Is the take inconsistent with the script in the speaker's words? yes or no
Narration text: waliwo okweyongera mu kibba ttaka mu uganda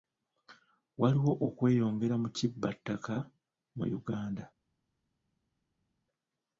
no